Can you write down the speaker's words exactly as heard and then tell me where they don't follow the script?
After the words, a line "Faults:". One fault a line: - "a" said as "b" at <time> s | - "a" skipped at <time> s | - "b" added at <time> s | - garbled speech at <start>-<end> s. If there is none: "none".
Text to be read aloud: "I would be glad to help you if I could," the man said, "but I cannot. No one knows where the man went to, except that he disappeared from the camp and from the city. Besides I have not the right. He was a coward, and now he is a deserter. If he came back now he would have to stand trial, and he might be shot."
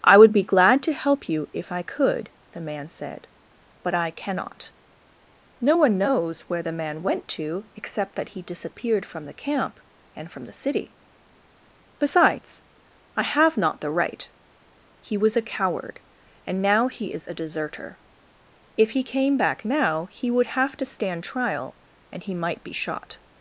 "I would be glad to help you if I could," the man said, "but I cannot. No one knows where the man went to, except that he disappeared from the camp and from the city. Besides I have not the right. He was a coward, and now he is a deserter. If he came back now he would have to stand trial, and he might be shot."
Faults:
none